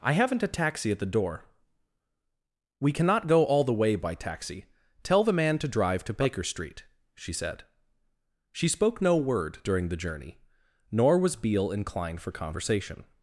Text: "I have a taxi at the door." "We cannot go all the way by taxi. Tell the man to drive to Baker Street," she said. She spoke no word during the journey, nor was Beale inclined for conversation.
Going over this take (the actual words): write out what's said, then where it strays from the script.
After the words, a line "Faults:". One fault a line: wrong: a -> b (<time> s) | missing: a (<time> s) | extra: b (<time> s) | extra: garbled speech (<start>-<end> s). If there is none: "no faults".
"I haven't a taxi at the door." "We cannot go all the way by taxi. Tell the man to drive to Baker Street," she said. She spoke no word during the journey, nor was Beale inclined for conversation.
Faults:
wrong: have -> haven't (0.1 s)